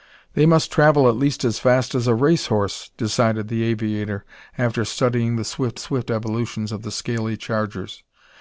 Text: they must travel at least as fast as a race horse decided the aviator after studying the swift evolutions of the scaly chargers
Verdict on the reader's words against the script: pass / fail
fail